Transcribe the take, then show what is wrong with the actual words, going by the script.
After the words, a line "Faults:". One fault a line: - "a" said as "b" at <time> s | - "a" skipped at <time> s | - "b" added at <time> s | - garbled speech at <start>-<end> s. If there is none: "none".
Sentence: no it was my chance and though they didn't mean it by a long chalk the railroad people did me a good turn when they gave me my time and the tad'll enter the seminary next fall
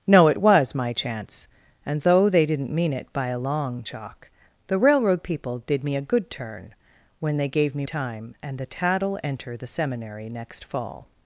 no it was my chance and though they didn't mean it by a long chalk the railroad people did me a good turn when they gave me time and the tad'll enter the seminary next fall
Faults:
- "my" skipped at 7.8 s